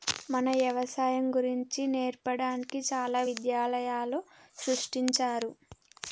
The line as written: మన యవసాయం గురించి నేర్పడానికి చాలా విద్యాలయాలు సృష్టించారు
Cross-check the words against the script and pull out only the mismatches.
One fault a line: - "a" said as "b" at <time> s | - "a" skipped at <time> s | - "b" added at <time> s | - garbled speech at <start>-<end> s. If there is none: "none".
none